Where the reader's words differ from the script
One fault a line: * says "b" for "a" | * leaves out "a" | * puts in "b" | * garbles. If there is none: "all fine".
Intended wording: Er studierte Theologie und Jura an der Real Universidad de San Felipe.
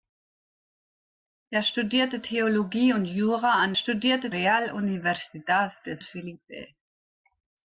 * says "studierte" for "der"
* leaves out "San"